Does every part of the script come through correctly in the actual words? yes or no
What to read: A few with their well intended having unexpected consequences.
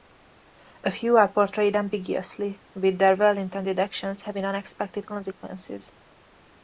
no